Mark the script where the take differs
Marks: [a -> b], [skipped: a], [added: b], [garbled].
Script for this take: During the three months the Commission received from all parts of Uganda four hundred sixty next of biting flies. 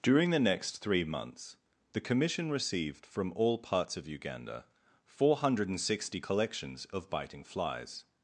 During the [added: next] three months the Commission received from all parts of Uganda four hundred sixty [next -> collections] of biting flies.